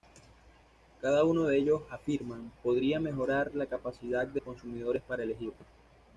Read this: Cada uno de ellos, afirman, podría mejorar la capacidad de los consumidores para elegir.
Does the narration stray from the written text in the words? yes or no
yes